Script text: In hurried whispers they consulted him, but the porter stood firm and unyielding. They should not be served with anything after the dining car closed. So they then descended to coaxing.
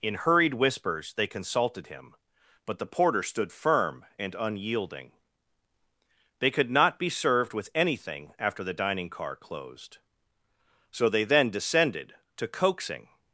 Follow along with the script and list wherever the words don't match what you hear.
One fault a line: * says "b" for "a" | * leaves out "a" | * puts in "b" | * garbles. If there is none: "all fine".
* says "could" for "should"